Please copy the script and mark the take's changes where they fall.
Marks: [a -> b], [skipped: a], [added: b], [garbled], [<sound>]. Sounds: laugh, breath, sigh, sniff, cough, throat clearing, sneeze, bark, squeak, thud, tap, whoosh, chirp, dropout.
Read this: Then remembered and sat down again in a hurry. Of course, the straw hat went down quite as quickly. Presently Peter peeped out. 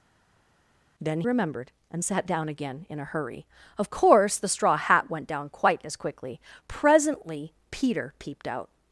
Then remembered and sat down again in a hurry. Of course, the straw hat went down quite as quickly. Presently Peter peeped out.